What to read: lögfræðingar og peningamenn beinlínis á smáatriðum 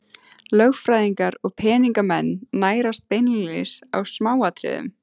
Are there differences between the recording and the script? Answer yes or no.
yes